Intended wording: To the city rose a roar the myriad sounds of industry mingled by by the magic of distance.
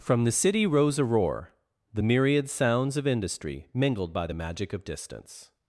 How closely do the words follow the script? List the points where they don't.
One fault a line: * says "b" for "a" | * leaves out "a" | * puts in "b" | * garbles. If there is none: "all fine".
* says "From" for "To"
* leaves out "by"